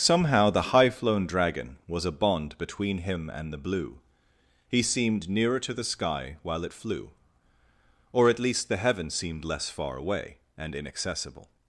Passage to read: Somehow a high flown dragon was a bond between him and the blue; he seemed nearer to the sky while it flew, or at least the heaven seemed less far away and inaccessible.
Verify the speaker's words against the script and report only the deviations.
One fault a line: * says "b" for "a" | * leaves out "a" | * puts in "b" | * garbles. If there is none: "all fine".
* says "the" for "a"